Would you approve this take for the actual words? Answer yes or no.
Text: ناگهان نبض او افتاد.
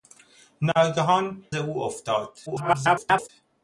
no